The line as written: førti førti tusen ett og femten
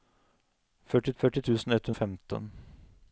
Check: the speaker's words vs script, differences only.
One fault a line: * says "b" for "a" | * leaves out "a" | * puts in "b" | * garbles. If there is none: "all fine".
all fine